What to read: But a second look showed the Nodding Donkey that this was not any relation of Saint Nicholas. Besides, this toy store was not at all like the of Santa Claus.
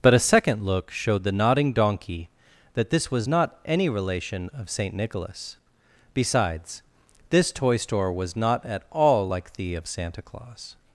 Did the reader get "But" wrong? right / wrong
right